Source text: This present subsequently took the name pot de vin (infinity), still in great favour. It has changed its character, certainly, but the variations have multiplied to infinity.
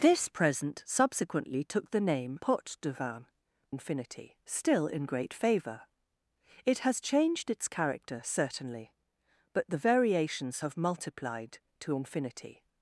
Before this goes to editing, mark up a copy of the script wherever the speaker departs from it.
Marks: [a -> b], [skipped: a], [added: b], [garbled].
This present subsequently took the name pot de vin (infinity), still in great favour. It has changed its character, certainly, but the variations have multiplied to infinity.